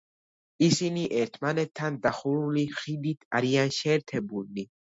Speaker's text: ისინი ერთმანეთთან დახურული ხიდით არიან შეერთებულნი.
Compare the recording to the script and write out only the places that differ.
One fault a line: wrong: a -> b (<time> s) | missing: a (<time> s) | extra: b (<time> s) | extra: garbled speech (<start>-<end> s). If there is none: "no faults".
no faults